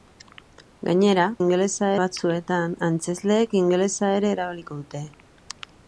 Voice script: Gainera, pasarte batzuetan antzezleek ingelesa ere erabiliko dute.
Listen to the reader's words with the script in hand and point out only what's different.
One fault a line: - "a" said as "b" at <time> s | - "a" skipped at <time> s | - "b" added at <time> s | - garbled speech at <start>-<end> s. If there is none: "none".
- "pasarte" said as "ingelesa" at 1.4 s